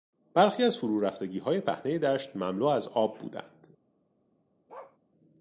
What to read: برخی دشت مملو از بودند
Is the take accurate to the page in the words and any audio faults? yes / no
no